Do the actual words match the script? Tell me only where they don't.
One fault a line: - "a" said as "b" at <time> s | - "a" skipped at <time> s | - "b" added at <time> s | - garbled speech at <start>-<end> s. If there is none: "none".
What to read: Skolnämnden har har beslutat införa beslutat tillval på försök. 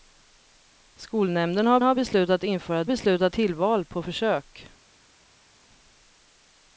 none